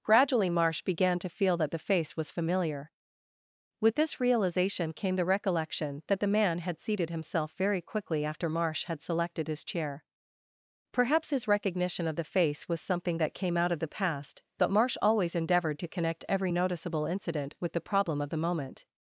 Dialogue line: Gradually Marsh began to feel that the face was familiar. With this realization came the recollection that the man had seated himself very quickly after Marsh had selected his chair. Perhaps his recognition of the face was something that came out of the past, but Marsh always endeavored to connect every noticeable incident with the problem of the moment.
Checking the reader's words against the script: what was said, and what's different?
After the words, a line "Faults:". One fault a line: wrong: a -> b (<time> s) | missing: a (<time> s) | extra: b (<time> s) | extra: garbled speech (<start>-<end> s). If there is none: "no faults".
Gradually Marsh began to feel that the face was familiar. With this realization came the recollection that the man had seated himself very quickly after Marsh had selected his chair. Perhaps his recognition of the face was something that came out of the past, but Marsh always endeavored to connect every noticeable incident with the problem of the moment.
Faults:
no faults